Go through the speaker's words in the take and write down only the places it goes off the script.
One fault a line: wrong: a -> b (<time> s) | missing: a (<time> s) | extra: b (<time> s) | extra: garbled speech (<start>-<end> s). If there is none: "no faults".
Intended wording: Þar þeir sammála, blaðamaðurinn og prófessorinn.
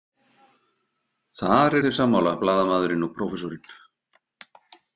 no faults